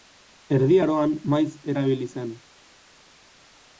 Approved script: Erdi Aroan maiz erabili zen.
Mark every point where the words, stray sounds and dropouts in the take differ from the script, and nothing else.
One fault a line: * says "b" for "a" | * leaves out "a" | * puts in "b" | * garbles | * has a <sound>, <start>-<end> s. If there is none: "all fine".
all fine